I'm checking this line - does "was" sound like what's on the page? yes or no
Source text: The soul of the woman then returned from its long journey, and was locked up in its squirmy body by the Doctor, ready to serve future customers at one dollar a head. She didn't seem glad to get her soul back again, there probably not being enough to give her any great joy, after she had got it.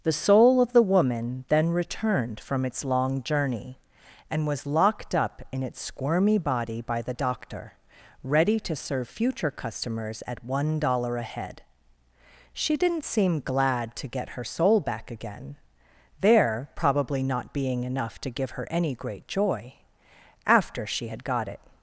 yes